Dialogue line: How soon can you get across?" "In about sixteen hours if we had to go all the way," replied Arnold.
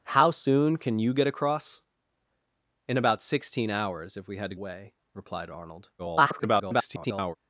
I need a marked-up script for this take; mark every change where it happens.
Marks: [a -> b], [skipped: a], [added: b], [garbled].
How soon can you get across?" "In about sixteen hours if we had to [skipped: go all the] way," replied Arnold. [garbled]